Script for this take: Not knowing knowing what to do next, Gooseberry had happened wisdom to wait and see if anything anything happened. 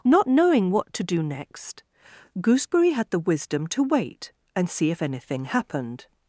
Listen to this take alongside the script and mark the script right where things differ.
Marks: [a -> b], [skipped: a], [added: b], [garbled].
Not knowing [skipped: knowing] what to do next, Gooseberry had [happened -> the] wisdom to wait and see if anything [skipped: anything] happened.